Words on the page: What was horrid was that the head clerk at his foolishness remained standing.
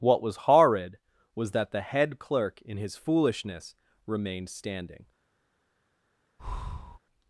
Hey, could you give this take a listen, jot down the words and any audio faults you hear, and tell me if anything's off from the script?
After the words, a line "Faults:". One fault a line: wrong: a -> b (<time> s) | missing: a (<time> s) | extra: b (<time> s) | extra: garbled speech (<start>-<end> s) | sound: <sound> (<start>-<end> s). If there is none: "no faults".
What was horrid was that the head clerk in his foolishness remained standing.
Faults:
wrong: at -> in (2.6 s)
sound: breath (6.4-7.0 s)